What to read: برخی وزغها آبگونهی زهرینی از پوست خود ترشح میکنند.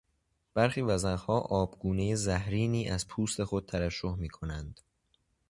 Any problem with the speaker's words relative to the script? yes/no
no